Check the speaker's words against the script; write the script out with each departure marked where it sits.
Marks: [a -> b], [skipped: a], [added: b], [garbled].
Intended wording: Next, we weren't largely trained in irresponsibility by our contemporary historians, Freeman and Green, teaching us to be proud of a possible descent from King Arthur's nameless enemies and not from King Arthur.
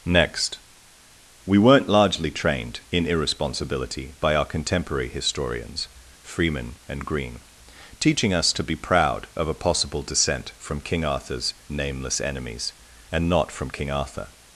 Next, we weren't largely trained in irresponsibility by our contemporary historians, Freeman and Green, teaching us to be proud of a possible descent from King Arthur's nameless enemies and not from King Arthur.